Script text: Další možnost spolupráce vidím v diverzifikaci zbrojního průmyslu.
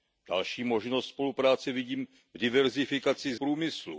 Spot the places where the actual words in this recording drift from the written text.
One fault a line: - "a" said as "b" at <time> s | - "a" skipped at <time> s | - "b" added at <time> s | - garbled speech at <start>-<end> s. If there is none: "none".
- "zbrojního" skipped at 3.4 s